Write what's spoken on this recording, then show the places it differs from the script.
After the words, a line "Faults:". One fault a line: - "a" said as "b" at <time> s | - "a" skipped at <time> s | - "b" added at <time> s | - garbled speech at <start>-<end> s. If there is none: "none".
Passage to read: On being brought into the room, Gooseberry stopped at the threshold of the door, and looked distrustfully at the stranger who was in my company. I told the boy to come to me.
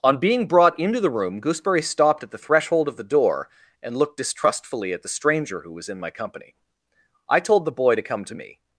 On being brought into the room, Gooseberry stopped at the threshold of the door, and looked distrustfully at the stranger who was in my company. I told the boy to come to me.
Faults:
none